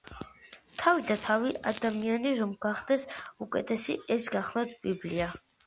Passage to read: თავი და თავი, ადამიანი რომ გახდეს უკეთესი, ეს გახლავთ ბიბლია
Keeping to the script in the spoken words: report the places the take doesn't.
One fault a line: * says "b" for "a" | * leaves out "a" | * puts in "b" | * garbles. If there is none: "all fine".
all fine